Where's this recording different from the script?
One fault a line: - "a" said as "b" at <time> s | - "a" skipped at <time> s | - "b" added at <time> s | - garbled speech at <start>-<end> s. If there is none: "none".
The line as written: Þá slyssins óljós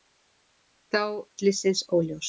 none